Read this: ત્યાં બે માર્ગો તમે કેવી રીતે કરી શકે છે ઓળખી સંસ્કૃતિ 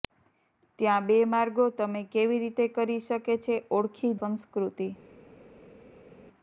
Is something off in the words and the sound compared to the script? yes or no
no